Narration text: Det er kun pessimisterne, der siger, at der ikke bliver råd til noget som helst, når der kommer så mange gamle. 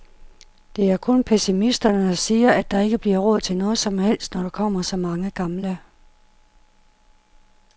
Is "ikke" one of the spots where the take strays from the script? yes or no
no